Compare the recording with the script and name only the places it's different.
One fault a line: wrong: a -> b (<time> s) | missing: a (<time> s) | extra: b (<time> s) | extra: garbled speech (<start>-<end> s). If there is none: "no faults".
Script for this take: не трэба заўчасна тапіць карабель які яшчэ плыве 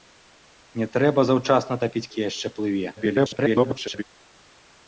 missing: карабель (2.1 s)
extra: garbled speech (3.0-4.0 s)